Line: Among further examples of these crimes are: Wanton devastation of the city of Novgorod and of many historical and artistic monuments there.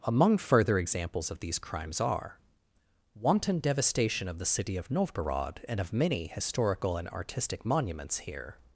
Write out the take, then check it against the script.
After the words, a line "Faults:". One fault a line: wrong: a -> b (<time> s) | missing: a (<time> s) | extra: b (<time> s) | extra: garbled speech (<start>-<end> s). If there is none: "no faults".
Among further examples of these crimes are: Wanton devastation of the city of Novgorod and of many historical and artistic monuments here.
Faults:
wrong: there -> here (8.2 s)